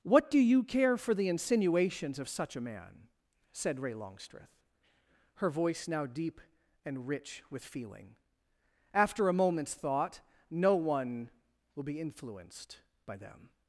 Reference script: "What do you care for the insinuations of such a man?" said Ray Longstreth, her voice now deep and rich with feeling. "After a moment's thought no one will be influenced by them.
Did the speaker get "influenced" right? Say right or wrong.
right